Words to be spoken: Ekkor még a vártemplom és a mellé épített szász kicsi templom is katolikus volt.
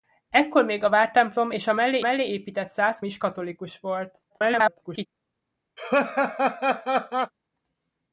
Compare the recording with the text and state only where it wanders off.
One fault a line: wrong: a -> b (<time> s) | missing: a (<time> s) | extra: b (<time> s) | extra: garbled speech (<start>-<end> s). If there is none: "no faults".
extra: mellé (2.0 s)
missing: kicsi templom (3.0 s)
extra: garbled speech (4.3-5.1 s)